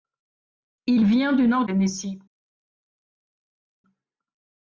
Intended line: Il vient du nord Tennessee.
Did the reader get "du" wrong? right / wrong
right